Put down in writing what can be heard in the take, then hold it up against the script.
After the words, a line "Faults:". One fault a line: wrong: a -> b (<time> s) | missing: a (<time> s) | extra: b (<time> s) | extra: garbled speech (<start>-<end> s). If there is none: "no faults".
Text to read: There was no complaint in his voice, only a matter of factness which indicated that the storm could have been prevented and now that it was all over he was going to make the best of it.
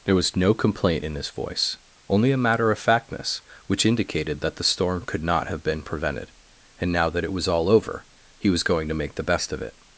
There was no complaint in his voice, only a matter of factness which indicated that the storm could not have been prevented and now that it was all over he was going to make the best of it.
Faults:
extra: not (5.2 s)